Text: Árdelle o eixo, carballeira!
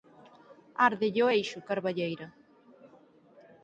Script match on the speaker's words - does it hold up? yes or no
yes